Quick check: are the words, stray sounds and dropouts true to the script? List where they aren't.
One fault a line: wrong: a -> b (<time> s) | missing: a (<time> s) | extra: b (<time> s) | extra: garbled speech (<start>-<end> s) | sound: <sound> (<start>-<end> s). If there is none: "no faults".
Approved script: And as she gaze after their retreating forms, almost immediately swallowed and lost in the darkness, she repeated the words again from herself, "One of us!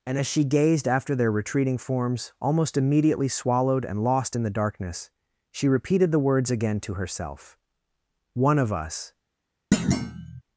wrong: gaze -> gazed (0.4 s)
wrong: from -> to (6.8 s)
sound: thud (9.7-10.4 s)